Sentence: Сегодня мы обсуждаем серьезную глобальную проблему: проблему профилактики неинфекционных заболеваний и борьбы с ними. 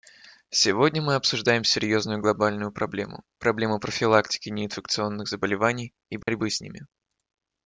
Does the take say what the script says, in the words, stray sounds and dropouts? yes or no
no